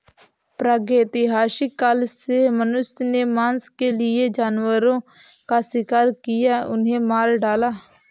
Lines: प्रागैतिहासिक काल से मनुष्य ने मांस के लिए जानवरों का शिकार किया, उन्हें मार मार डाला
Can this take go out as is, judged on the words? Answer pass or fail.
fail